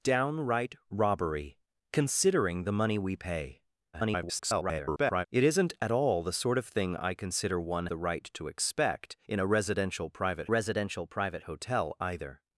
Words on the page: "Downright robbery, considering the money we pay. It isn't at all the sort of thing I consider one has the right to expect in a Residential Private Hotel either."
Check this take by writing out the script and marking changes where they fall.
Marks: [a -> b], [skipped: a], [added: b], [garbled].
"Downright robbery, considering the money we pay. [garbled] It isn't at all the sort of thing I consider one [skipped: has] the right to expect in a Residential Private [added: Residential Private] Hotel either."